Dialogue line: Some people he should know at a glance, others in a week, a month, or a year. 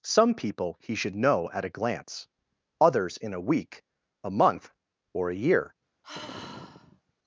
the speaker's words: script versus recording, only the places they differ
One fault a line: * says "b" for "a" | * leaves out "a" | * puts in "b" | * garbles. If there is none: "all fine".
all fine